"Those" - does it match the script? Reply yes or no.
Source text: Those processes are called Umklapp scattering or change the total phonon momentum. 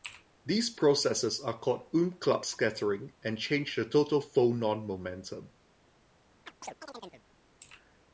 no